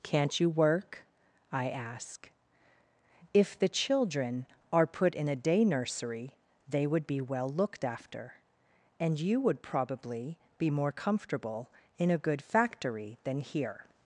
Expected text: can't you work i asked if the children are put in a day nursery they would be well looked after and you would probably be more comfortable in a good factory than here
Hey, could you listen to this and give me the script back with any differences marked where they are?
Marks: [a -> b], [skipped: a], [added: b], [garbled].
can't you work i [asked -> ask] if the children are put in a day nursery they would be well looked after and you would probably be more comfortable in a good factory than here